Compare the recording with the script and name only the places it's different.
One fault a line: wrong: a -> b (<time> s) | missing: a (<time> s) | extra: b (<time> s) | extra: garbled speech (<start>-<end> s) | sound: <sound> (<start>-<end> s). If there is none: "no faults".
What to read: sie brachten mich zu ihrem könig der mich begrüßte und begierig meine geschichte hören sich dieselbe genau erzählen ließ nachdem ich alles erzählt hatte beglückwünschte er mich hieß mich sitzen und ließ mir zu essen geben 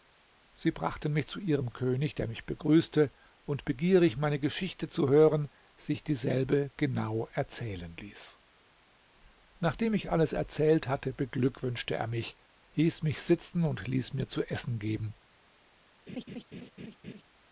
extra: zu (4.9 s)
sound: laugh (16.1-17.2 s)